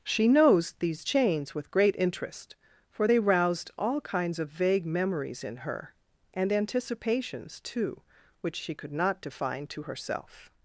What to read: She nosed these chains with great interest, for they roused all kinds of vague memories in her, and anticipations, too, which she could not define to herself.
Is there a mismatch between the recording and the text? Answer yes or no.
yes